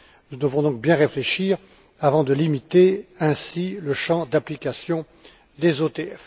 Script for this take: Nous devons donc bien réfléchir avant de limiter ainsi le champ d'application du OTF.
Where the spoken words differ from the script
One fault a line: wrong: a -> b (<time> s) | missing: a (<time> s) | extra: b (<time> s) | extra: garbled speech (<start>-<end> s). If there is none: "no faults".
wrong: du -> des (5.6 s)